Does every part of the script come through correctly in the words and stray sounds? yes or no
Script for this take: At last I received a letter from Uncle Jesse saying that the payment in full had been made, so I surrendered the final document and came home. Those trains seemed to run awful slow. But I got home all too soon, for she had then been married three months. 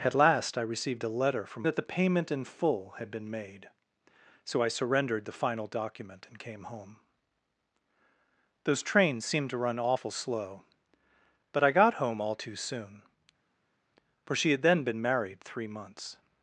no